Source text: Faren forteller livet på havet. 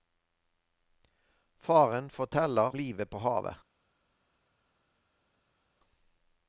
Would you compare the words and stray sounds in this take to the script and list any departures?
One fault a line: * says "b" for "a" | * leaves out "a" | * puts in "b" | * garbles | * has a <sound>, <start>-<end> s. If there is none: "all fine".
all fine